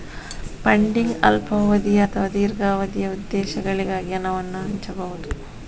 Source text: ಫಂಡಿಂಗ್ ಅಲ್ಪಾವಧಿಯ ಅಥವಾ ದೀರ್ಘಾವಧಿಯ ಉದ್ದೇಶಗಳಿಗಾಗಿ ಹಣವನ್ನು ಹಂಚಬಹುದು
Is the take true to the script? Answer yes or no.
yes